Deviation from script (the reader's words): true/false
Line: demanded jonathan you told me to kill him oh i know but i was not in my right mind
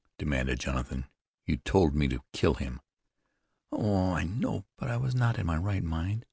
false